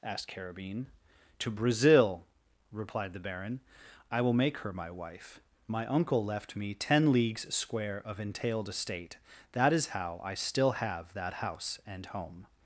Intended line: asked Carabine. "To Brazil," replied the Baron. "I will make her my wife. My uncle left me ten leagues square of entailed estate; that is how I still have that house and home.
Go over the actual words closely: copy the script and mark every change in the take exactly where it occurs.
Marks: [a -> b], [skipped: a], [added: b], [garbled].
asked Carabine. "To Brazil," replied the Baron. "I will make her my wife. My uncle left me ten leagues square of entailed estate; that is how I still have that house and home.